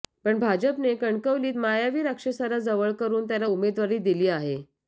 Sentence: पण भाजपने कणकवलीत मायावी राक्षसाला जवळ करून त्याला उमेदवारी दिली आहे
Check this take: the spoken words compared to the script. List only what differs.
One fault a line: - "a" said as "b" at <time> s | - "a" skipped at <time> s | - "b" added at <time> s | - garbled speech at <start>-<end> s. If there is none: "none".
none